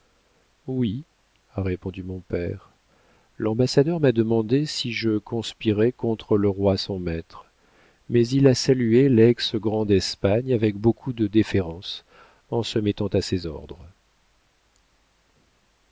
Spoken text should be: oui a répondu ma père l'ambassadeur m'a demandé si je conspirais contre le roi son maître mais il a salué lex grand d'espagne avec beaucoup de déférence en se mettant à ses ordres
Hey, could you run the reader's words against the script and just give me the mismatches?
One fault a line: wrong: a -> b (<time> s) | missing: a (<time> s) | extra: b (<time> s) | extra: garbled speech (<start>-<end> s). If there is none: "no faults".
wrong: ma -> mon (2.0 s)